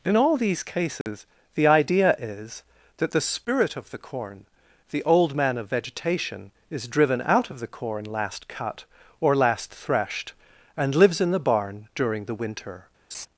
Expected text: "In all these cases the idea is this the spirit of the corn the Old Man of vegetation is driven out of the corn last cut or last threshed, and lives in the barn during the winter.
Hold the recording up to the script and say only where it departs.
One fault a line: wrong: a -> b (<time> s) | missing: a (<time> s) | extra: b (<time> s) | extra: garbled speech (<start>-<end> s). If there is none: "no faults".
wrong: this -> that (3.0 s)